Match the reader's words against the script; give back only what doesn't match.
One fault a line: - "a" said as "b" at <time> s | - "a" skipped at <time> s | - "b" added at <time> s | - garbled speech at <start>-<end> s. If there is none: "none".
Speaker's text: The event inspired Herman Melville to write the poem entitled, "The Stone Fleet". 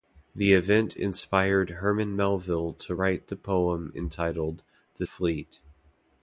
- "Stone" skipped at 5.1 s